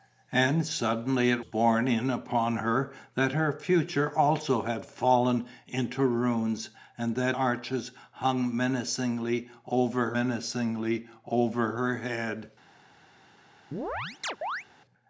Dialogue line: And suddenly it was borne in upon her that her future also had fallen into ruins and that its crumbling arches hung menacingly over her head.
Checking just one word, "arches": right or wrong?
wrong